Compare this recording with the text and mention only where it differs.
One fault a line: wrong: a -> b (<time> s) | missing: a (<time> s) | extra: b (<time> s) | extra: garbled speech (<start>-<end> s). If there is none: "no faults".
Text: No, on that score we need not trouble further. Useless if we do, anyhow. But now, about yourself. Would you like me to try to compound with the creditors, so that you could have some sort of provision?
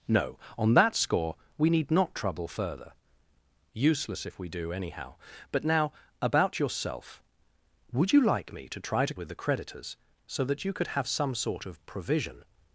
missing: compound (9.1 s)